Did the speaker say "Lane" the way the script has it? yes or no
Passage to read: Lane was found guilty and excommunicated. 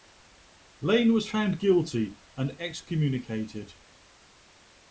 yes